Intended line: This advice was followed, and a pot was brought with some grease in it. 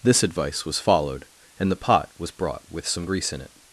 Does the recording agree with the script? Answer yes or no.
no